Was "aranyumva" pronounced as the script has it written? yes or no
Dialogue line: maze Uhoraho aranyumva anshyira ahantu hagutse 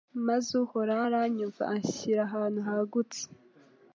yes